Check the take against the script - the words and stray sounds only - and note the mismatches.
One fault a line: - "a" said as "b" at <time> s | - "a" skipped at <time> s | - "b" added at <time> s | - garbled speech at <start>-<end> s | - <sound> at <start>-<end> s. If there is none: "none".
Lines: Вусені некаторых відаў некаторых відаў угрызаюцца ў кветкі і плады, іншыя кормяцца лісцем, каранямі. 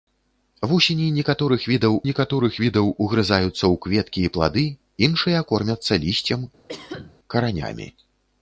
- cough at 6.7-7.2 s